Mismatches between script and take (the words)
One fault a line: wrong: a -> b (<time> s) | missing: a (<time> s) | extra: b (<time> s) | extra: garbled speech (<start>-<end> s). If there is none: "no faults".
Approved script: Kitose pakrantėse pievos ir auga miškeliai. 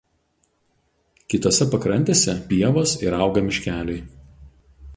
no faults